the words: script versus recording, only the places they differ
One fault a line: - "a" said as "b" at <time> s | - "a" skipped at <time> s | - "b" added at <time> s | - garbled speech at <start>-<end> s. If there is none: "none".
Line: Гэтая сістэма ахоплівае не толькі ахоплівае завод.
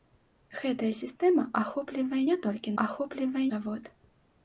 none